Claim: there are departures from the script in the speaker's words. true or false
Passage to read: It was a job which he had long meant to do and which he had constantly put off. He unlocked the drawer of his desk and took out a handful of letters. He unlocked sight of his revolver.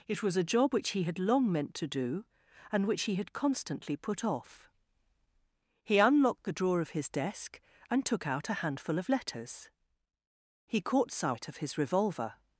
true